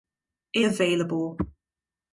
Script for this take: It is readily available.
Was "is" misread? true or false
true